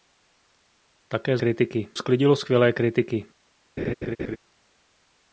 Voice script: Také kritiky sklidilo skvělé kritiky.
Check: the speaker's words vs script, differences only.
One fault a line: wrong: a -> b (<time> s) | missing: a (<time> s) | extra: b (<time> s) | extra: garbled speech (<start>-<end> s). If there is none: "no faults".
no faults